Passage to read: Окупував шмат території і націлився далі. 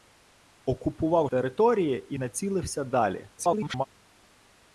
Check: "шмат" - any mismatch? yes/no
yes